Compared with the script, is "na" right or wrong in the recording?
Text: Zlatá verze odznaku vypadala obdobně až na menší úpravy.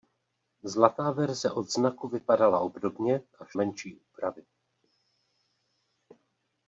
wrong